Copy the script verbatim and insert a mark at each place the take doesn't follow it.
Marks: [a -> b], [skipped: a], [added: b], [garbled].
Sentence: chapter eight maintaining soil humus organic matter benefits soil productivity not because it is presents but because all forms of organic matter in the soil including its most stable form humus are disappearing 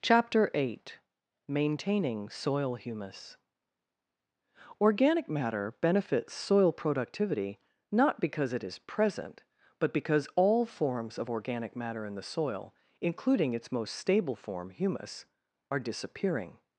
chapter eight maintaining soil humus organic matter benefits soil productivity not because it is [presents -> present] but because all forms of organic matter in the soil including its most stable form humus are disappearing